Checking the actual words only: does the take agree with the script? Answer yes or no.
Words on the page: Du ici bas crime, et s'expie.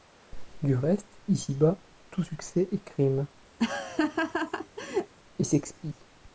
no